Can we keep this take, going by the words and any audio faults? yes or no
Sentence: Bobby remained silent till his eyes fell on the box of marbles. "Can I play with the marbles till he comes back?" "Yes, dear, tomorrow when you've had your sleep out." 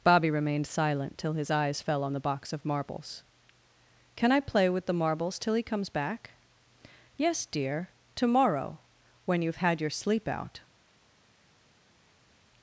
yes